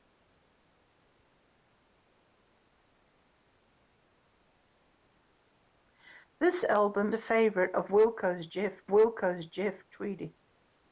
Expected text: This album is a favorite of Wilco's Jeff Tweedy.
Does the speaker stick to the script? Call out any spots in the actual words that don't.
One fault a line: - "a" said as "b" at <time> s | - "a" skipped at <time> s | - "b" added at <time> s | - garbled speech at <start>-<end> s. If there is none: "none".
- "is" skipped at 7.2 s
- "Wilco's Jeff" added at 8.9 s